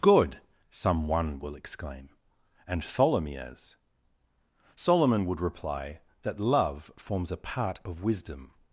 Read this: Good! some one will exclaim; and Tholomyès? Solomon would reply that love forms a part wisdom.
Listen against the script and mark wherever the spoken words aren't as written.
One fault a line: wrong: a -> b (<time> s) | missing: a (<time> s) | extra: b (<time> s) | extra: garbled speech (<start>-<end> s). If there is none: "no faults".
extra: of (7.8 s)